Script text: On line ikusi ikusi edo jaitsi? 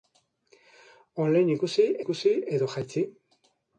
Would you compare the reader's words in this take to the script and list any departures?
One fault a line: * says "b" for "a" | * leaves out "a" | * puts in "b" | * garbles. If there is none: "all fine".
all fine